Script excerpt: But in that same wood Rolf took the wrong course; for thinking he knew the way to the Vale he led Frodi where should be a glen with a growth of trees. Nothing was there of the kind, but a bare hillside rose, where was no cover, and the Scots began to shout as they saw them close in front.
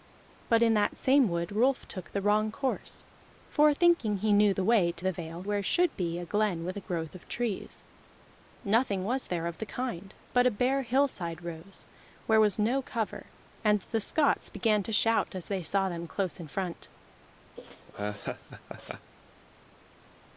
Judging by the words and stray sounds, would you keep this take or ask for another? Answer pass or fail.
fail